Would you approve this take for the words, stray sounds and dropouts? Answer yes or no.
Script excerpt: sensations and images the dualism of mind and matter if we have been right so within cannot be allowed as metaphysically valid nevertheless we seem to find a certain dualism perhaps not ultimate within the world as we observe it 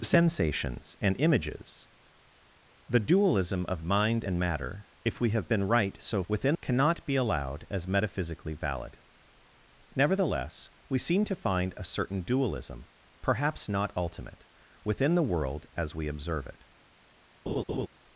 no